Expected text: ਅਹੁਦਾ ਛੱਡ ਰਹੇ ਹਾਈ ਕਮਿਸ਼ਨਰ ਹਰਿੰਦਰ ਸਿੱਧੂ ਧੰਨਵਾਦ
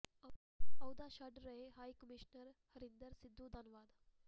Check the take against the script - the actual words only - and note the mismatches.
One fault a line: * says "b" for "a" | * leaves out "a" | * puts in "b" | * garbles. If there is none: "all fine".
all fine